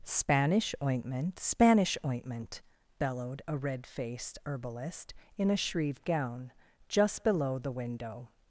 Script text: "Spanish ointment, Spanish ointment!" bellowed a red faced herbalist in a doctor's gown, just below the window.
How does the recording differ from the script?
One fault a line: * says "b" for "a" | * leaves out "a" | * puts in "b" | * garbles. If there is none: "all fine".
* says "shrieve" for "doctor's"